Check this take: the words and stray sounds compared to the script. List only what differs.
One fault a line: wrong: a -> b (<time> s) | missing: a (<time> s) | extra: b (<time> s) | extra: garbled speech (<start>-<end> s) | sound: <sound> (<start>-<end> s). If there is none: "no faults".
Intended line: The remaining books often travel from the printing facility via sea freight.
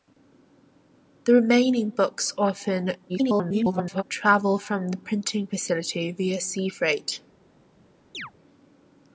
extra: garbled speech (3.1-4.0 s)
sound: chirp (8.1-8.3 s)